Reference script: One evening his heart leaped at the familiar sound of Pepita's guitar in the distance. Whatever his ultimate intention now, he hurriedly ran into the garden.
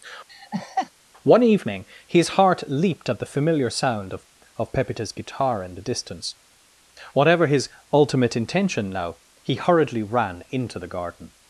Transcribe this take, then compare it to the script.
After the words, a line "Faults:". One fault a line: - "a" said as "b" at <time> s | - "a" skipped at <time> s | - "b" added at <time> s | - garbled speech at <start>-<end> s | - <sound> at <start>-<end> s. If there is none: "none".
One evening his heart leaped at the familiar sound of of Pepita's guitar in the distance. Whatever his ultimate intention now, he hurriedly ran into the garden.
Faults:
- laugh at 0.3-0.9 s
- "of" added at 4.6 s